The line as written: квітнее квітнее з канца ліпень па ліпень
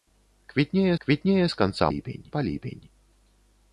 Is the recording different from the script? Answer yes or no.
no